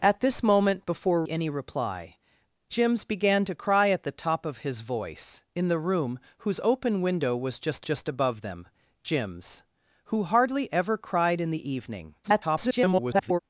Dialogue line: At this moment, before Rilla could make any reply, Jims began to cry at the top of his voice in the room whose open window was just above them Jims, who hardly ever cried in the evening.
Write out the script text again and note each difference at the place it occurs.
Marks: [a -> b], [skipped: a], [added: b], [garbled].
At this moment, before [skipped: Rilla could make] any reply, Jims began to cry at the top of his voice in the room whose open window was just [added: just] above them Jims, who hardly ever cried in the evening. [garbled]